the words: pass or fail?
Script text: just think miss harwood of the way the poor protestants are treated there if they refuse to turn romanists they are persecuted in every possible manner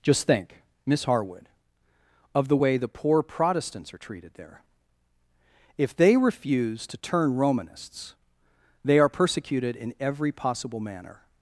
pass